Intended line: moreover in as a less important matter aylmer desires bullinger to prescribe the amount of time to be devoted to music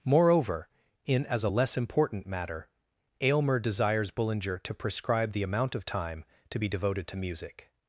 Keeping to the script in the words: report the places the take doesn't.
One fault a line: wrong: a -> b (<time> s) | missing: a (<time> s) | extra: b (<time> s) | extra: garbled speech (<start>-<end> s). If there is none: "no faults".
no faults